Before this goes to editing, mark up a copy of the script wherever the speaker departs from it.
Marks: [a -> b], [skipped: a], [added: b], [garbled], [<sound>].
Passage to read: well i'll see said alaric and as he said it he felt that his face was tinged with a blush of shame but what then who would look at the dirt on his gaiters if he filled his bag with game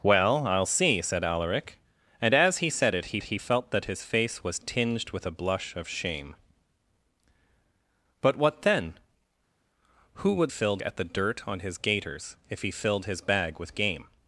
well i'll see said alaric and as he said it he [added: he] felt that his face was tinged with a blush of shame but what then who would [look -> filled] at the dirt on his gaiters if he filled his bag with game